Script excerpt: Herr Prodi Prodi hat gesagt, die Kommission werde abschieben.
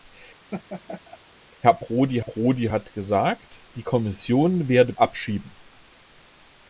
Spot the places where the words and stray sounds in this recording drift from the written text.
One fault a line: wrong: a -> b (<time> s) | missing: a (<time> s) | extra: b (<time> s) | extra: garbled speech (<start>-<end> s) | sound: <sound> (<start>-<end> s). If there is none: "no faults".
sound: laugh (0.5-1.2 s)